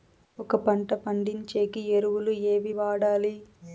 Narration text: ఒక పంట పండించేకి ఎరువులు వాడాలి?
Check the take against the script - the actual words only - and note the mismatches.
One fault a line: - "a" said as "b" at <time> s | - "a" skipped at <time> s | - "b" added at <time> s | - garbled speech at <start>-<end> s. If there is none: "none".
- "ఏవి" added at 2.5 s